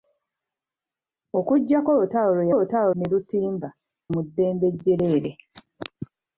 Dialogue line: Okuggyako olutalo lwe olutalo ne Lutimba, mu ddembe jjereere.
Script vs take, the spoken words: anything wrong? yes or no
no